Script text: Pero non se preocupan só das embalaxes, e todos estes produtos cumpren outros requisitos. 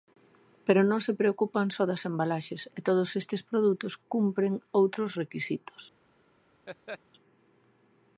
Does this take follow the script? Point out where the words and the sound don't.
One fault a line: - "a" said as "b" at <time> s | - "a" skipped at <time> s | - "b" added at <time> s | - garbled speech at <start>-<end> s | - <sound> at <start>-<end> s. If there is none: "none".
- laugh at 6.7-7.0 s